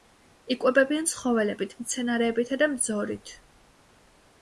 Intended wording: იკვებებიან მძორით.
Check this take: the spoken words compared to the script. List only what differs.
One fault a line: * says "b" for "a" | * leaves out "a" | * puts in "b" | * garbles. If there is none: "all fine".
* puts in "ცხოველებით მცენარეებითა და"